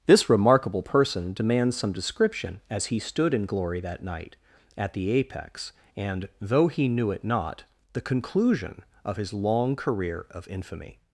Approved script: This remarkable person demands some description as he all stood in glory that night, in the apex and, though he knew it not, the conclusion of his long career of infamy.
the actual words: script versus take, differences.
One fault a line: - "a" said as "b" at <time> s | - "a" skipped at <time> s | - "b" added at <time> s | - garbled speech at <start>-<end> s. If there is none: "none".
- "all" skipped at 3.0 s
- "in" said as "at" at 4.8 s